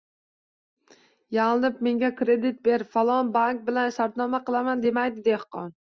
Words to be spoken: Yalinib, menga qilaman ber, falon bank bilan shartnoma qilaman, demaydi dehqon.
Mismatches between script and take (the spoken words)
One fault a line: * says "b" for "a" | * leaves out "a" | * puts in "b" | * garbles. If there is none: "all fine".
* says "kredit" for "qilaman"